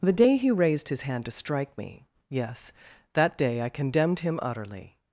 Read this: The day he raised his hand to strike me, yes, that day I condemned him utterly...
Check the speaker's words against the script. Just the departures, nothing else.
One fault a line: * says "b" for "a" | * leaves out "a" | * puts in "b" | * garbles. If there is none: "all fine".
all fine